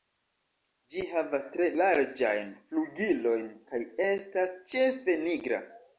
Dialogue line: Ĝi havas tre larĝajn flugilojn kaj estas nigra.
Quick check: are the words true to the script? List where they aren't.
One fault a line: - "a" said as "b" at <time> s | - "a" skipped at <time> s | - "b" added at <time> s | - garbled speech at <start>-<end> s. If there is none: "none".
- "ĉefe" added at 4.7 s